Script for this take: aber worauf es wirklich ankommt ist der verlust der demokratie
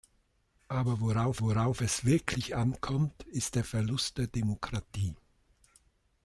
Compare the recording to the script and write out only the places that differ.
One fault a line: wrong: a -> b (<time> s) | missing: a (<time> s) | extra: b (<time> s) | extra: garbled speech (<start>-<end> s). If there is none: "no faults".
extra: worauf (1.4 s)